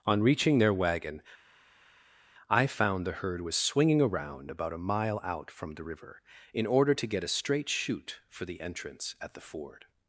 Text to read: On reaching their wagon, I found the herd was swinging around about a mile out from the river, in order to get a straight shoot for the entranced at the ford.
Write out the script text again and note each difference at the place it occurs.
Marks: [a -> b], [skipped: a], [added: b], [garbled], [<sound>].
On reaching their wagon, I found the herd was swinging around about a mile out from the river, in order to get a straight shoot for the [entranced -> entrance] at the ford.